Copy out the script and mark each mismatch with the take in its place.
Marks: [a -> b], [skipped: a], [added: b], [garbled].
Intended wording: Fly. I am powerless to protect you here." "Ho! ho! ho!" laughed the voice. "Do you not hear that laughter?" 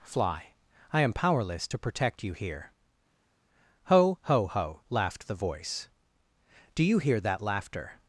Fly. I am powerless to protect you here." "Ho! ho! ho!" laughed the voice. "Do you [skipped: not] hear that laughter?"